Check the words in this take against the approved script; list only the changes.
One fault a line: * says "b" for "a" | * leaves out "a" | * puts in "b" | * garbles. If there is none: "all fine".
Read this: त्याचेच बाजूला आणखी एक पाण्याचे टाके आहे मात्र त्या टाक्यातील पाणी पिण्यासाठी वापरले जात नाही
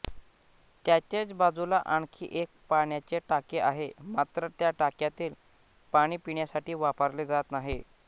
all fine